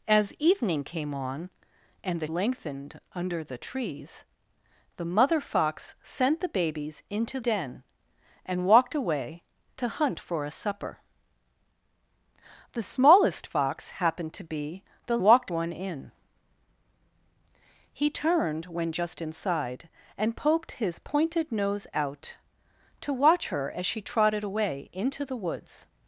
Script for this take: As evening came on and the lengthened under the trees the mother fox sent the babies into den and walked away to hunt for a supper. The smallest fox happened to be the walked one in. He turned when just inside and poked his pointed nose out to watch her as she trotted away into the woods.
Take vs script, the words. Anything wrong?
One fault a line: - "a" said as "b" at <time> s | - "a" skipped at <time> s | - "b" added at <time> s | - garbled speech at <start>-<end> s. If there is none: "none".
none